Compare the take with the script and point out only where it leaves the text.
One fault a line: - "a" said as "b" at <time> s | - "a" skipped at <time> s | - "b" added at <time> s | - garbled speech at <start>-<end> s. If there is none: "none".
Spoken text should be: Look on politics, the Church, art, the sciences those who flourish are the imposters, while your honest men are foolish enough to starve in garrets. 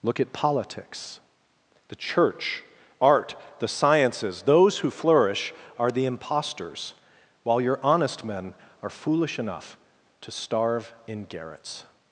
- "on" said as "at" at 0.2 s